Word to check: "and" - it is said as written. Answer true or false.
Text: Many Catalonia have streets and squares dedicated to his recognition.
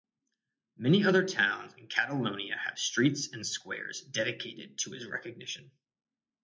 true